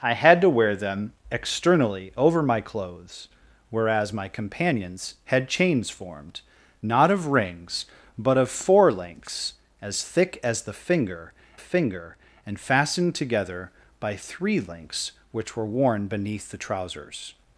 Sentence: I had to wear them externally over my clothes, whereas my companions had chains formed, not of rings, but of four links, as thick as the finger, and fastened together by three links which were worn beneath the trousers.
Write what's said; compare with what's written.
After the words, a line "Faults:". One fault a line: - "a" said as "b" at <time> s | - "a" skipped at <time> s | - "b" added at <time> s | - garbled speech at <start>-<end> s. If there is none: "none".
I had to wear them externally over my clothes, whereas my companions had chains formed, not of rings, but of four links, as thick as the finger finger, and fastened together by three links which were worn beneath the trousers.
Faults:
- "finger" added at 11.6 s